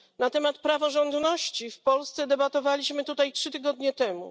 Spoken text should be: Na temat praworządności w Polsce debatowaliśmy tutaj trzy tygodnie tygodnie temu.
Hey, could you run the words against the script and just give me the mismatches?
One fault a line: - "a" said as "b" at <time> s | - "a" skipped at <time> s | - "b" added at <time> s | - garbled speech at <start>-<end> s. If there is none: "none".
- "tygodnie" skipped at 3.9 s